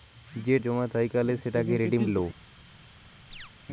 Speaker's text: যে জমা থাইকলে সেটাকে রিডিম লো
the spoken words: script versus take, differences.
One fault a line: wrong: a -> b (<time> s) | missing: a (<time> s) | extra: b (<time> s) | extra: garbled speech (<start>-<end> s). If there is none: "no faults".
no faults